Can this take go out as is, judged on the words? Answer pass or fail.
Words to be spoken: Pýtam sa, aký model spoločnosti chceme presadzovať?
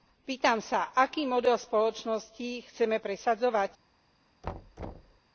pass